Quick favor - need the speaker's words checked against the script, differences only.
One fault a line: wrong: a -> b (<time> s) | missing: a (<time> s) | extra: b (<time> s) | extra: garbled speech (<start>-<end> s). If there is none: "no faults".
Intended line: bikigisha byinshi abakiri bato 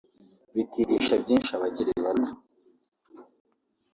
no faults